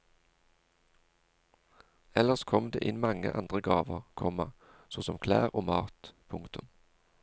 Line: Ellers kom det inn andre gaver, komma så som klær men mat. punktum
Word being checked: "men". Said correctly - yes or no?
no